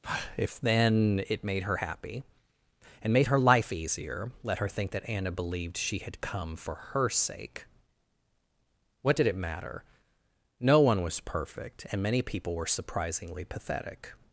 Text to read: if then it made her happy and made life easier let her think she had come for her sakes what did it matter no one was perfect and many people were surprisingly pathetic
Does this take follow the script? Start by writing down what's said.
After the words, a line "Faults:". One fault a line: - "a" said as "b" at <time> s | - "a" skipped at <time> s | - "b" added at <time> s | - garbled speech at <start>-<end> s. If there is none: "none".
if then it made her happy and made her life easier let her think that anna believed she had come for her sake what did it matter no one was perfect and many people were surprisingly pathetic
Faults:
- "her" added at 3.3 s
- "that anna believed" added at 4.9 s
- "sakes" said as "sake" at 7.1 s